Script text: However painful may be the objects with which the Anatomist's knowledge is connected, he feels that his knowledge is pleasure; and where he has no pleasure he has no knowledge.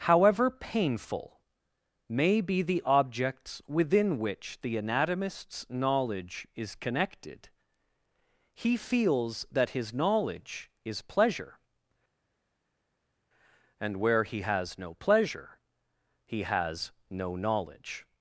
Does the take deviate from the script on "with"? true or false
true